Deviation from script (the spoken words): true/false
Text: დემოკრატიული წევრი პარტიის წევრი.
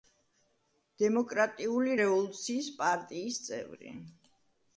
true